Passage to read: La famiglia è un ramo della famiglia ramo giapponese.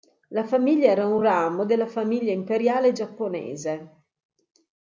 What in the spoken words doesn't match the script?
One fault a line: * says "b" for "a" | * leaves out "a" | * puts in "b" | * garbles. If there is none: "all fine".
* says "era" for "è"
* says "imperiale" for "ramo"